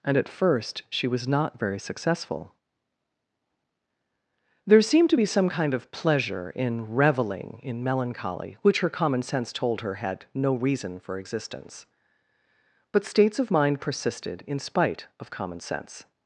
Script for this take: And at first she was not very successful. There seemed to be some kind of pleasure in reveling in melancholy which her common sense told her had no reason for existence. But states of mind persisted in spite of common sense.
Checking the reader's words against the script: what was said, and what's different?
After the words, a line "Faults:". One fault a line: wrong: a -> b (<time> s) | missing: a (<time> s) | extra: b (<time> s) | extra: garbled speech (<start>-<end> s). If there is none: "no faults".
And at first she was not very successful. There seemed to be some kind of pleasure in reveling in melancholy which her common sense told her had no reason for existence. But states of mind persisted in spite of common sense.
Faults:
no faults